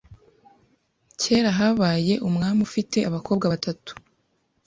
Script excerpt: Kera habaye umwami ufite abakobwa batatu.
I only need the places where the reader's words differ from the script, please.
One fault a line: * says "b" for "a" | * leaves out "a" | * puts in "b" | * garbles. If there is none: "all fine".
all fine